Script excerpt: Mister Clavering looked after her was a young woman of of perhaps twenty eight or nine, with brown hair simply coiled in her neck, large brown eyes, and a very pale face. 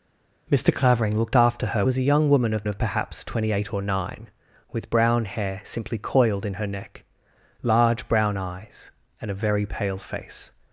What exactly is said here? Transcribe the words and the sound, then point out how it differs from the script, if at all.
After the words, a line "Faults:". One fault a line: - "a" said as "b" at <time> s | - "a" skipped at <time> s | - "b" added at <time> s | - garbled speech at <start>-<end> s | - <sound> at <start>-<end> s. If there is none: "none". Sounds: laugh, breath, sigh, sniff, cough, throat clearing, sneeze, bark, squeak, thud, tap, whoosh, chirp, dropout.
Mister Clavering looked after her was a young woman of of perhaps twenty eight or nine, with brown hair simply coiled in her neck, large brown eyes, and a very pale face.
Faults:
none